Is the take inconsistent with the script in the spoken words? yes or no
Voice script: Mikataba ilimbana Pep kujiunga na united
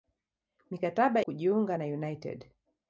yes